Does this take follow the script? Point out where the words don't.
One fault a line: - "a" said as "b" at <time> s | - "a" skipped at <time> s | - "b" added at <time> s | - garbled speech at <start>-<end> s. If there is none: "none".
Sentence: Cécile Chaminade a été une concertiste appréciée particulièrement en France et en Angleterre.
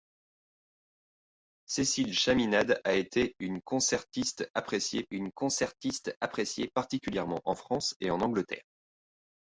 - "une concertiste appréciée" added at 5.1 s